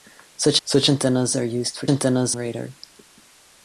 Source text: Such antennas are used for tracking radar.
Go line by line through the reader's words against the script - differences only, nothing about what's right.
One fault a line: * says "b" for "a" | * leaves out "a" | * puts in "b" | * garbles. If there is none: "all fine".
* puts in "such"
* says "antennas" for "tracking"